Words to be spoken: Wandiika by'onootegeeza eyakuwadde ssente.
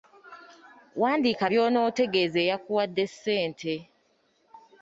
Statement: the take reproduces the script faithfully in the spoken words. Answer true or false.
true